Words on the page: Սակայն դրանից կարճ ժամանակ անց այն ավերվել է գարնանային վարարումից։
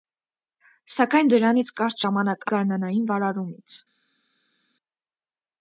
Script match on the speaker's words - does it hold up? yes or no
no